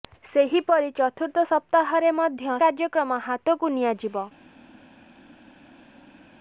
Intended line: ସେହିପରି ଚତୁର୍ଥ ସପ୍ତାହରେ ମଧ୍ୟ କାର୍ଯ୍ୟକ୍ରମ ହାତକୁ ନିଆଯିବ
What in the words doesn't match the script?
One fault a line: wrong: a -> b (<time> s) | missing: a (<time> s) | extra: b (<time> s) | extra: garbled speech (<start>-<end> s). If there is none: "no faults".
no faults